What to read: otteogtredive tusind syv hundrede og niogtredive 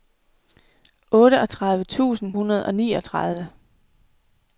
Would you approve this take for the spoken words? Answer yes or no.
no